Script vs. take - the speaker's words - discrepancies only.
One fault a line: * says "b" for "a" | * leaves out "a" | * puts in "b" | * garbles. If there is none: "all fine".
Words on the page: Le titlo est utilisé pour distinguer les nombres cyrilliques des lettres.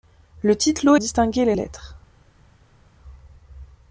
* leaves out "est utilisé pour"
* leaves out "nombres cyrilliques des"